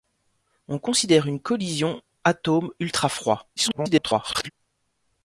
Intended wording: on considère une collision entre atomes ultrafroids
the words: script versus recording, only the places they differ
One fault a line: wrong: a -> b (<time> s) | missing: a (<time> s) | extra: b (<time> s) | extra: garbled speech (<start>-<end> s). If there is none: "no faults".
missing: entre (2.0 s)
extra: garbled speech (3.6-4.5 s)